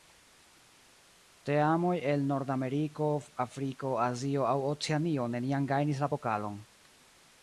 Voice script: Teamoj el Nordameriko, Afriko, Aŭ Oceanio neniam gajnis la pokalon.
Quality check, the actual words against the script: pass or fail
fail